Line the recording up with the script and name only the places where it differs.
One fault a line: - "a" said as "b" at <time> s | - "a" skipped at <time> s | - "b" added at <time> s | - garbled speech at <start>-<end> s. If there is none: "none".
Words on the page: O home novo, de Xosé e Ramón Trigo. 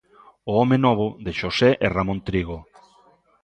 none